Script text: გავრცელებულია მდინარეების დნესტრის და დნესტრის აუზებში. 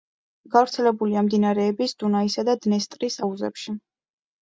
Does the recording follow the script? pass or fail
fail